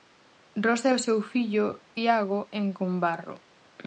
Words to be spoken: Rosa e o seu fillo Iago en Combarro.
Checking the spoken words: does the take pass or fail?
pass